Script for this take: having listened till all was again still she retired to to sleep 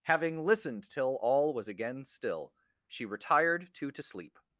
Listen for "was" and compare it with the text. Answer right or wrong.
right